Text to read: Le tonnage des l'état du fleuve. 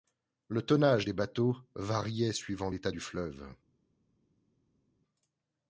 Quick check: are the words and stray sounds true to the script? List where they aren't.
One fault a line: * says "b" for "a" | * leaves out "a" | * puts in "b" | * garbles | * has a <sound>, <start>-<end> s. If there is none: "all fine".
* puts in "bateaux variait suivant"